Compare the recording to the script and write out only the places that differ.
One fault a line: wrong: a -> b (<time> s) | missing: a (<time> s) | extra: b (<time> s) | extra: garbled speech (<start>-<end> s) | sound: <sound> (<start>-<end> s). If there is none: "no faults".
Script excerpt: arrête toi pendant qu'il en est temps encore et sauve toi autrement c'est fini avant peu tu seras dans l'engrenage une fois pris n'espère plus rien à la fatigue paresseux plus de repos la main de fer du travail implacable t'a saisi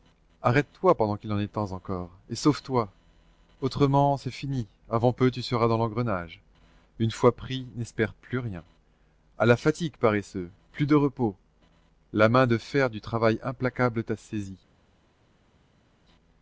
no faults